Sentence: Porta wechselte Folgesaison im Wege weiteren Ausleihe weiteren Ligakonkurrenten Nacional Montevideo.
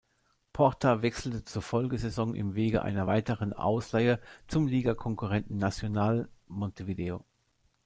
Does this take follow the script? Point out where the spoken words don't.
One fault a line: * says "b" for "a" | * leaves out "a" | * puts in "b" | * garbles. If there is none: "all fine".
* puts in "zur"
* puts in "einer"
* says "zum" for "weiteren"